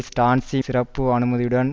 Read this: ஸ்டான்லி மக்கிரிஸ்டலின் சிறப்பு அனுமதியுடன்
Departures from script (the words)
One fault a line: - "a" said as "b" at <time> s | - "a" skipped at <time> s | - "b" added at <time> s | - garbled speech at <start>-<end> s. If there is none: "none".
- "மக்கிரிஸ்டலின்" skipped at 0.6 s